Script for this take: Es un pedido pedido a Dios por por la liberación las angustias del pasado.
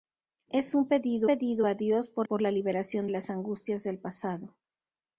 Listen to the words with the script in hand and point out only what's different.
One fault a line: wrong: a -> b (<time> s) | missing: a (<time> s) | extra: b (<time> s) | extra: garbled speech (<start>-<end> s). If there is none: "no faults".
no faults